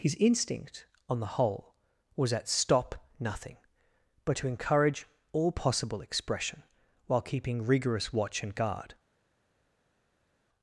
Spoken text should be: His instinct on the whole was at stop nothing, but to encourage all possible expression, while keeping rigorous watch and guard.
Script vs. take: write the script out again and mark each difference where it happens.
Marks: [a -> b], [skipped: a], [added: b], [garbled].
His instinct on the whole was at stop nothing, but to encourage all possible expression, while keeping rigorous watch and guard.